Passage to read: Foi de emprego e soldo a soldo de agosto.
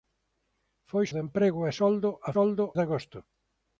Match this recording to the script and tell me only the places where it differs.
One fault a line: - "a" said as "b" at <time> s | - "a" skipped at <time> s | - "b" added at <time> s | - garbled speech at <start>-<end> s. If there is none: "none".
none